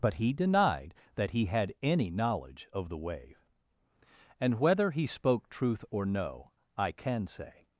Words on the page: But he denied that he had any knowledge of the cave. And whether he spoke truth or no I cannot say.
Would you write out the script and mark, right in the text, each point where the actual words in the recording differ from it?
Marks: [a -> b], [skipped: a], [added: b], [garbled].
But he denied that he had any knowledge of the [cave. -> wave] And whether he spoke truth or no I [cannot -> can] say.